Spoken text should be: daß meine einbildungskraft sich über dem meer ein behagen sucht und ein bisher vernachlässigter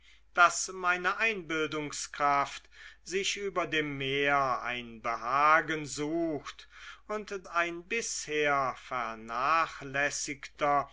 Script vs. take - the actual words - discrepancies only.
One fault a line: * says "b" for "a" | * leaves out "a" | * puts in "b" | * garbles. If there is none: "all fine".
all fine